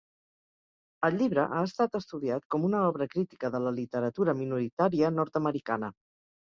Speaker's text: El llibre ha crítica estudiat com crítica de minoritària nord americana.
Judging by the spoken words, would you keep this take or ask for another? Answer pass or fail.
fail